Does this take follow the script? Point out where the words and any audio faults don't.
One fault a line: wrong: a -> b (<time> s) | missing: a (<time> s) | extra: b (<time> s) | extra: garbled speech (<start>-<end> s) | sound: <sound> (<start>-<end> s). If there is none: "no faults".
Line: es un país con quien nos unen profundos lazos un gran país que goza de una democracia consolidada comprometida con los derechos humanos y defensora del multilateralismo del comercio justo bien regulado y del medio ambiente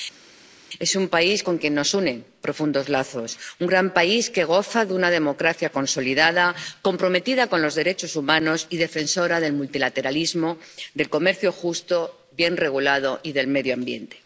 no faults